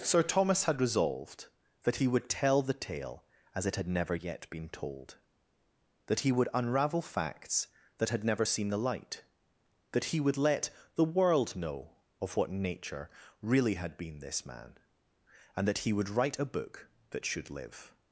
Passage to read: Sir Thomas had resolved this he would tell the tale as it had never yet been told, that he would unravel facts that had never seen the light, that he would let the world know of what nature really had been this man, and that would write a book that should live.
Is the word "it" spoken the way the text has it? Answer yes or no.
yes